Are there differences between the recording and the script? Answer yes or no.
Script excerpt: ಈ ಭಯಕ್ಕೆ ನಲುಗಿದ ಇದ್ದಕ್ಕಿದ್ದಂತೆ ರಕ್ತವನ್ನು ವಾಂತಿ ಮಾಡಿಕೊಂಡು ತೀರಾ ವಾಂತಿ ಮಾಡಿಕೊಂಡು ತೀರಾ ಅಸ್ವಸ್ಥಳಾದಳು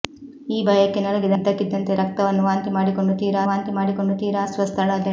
no